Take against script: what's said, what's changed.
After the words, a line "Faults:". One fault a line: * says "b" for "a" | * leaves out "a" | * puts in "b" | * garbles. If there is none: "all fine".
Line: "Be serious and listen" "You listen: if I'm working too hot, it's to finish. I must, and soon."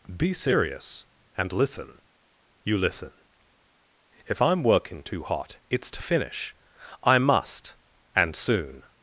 "Be serious and listen" "You listen: if I'm working too hot, it's to finish. I must, and soon."
Faults:
all fine